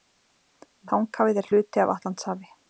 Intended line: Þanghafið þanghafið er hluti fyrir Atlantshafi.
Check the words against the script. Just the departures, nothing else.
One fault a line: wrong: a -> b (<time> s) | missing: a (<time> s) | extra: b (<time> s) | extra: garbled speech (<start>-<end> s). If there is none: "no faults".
missing: þanghafið (1.4 s)
wrong: fyrir -> af (1.9 s)